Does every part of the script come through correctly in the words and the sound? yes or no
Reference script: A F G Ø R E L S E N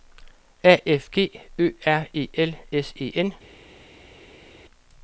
yes